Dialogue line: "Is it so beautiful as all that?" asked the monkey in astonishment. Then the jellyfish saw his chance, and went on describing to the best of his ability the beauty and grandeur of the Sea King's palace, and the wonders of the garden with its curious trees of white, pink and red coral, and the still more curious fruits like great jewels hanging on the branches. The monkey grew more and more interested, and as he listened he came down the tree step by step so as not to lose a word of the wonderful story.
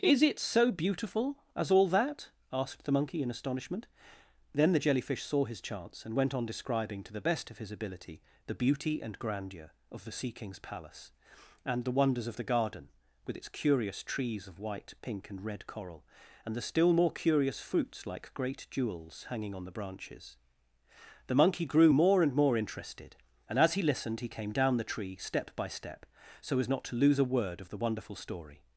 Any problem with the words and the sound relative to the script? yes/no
no